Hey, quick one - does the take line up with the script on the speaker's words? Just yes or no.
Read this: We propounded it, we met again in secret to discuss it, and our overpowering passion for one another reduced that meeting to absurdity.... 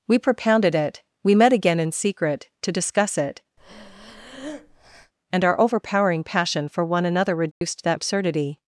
no